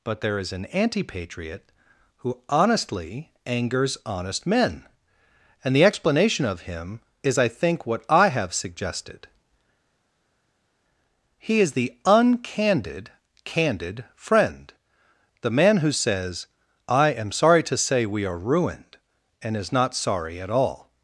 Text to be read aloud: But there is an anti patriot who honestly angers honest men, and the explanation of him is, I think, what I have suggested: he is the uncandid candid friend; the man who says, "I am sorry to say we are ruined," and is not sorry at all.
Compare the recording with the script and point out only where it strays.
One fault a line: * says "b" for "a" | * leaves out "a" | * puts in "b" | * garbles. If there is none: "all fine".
all fine